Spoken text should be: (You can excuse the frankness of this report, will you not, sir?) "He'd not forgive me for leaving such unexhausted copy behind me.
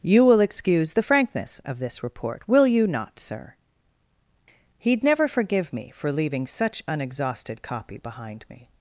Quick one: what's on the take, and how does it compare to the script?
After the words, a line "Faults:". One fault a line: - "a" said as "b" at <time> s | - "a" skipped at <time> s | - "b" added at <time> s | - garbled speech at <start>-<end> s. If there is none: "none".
(You will excuse the frankness of this report, will you not, sir?) "He'd never forgive me for leaving such unexhausted copy behind me.
Faults:
- "can" said as "will" at 0.2 s
- "not" said as "never" at 5.0 s